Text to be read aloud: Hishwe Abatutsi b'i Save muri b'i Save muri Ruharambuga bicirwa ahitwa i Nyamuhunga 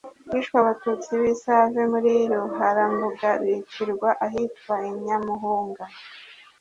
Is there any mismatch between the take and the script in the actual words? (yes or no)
yes